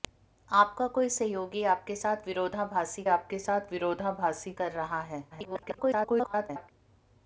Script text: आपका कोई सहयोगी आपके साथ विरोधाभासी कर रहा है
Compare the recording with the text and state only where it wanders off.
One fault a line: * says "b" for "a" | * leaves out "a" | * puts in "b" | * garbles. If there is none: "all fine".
* puts in "आपके साथ विरोधाभासी"
* garbles